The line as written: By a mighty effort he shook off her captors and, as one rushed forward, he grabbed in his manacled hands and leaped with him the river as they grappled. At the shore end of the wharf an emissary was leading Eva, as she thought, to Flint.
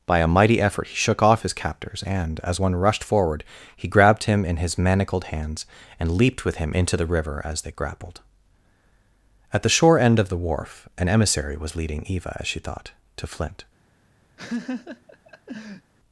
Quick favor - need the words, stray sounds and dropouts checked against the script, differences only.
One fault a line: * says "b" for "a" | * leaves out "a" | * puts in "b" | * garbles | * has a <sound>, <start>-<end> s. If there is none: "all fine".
* says "his" for "her"
* puts in "him"
* puts in "into"
* has a laugh, 14.4-15.9 s